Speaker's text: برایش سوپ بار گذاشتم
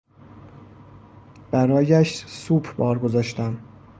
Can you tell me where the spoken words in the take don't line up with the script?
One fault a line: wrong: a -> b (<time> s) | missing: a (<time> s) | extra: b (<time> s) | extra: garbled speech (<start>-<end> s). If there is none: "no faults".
no faults